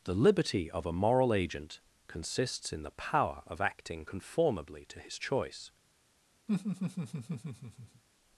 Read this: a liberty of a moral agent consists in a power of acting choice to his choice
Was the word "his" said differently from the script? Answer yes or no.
no